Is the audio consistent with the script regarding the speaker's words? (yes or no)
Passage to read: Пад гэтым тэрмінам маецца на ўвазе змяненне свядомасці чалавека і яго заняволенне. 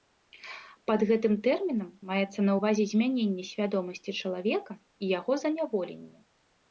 yes